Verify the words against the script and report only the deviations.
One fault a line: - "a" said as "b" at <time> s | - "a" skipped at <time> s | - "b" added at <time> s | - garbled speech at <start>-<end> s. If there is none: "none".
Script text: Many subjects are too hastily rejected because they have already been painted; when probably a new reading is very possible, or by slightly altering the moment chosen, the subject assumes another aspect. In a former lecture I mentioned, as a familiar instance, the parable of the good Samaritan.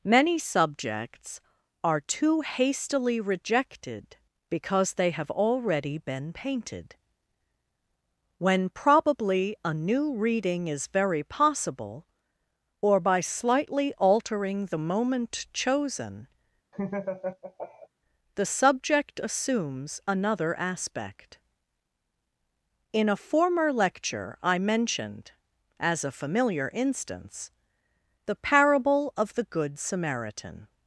none